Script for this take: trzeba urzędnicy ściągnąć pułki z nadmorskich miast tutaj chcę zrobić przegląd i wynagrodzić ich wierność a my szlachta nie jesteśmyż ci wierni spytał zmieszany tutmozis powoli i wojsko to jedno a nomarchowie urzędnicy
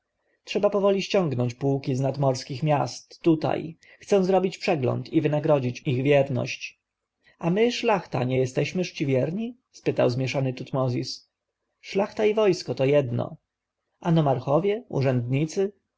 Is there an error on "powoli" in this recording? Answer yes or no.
yes